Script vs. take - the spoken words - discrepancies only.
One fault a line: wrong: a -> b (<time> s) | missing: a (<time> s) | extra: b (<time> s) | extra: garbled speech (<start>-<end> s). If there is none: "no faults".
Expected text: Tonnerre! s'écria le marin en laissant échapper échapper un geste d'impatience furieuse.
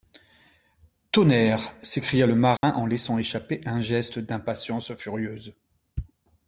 missing: échapper (3.6 s)